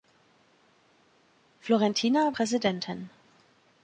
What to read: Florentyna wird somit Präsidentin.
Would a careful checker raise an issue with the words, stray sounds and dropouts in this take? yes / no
yes